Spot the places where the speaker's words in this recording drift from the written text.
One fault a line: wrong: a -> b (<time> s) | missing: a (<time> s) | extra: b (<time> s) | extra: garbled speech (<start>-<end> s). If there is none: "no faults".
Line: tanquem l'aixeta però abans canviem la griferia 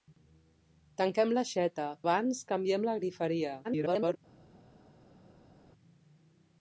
missing: però (1.9 s)
extra: garbled speech (3.6-4.2 s)